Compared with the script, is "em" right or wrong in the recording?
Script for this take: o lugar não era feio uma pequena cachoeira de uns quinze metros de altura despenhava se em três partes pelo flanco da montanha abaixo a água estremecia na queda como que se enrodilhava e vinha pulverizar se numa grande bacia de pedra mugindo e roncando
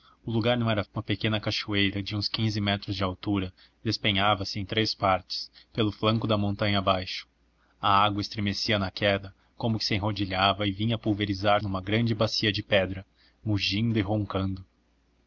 right